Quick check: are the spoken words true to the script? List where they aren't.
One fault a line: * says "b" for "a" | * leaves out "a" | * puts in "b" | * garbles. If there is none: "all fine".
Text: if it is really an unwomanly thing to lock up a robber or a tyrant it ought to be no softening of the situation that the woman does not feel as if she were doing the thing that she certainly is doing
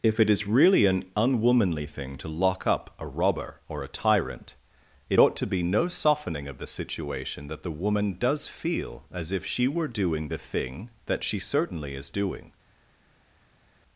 * leaves out "not"